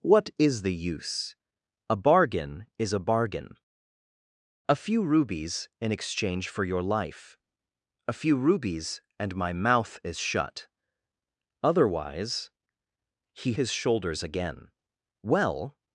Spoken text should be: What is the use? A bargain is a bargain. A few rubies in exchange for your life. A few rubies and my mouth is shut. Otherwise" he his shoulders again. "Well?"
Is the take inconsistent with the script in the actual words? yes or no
no